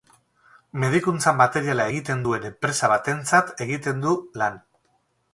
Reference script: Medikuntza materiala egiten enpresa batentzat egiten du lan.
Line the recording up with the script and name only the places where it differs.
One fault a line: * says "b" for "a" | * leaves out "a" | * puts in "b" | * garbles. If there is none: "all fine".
* puts in "duen"